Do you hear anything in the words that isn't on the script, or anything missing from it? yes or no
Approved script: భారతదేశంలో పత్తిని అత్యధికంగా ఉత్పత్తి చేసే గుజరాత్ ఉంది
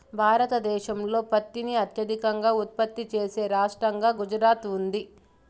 yes